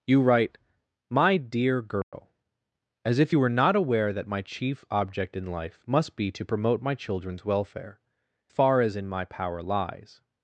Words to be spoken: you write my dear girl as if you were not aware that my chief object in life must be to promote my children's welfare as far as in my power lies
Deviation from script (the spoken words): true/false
true